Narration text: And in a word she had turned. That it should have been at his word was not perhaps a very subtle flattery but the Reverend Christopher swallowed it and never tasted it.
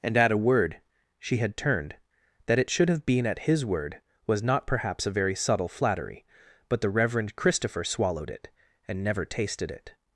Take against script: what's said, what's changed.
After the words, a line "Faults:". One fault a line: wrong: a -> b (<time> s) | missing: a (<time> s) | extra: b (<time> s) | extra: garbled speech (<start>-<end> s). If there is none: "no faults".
And at a word she had turned. That it should have been at his word was not perhaps a very subtle flattery but the Reverend Christopher swallowed it and never tasted it.
Faults:
wrong: in -> at (0.2 s)